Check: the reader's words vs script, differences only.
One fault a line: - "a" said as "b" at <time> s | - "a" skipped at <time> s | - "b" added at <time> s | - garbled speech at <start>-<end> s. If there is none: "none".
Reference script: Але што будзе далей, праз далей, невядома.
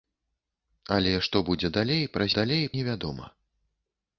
none